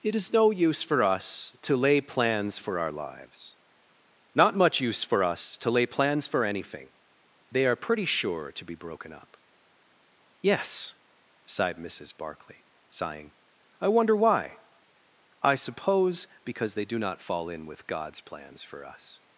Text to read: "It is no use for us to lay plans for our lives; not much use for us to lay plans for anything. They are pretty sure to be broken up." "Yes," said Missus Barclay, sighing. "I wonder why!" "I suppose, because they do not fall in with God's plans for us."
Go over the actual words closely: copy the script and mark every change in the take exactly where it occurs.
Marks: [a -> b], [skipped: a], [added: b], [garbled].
"It is no use for us to lay plans for our lives; not much use for us to lay plans for anything. They are pretty sure to be broken up." "Yes," [said -> sighed] Missus Barclay, sighing. "I wonder why!" "I suppose, because they do not fall in with God's plans for us."